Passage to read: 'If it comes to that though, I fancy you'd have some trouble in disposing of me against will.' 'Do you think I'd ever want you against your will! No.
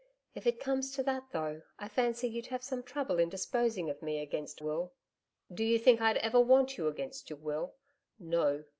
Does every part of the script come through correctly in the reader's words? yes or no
yes